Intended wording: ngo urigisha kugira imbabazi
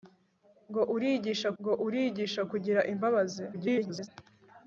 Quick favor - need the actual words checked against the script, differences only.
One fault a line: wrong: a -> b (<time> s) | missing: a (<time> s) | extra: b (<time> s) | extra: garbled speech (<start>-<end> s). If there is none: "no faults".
extra: ngo urigisha (1.6 s)
extra: garbled speech (3.5-4.1 s)